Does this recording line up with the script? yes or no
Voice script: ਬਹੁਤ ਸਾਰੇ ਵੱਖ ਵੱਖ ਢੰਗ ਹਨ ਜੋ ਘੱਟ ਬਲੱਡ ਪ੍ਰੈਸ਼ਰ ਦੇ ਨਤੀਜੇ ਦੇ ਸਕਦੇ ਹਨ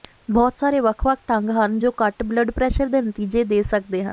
yes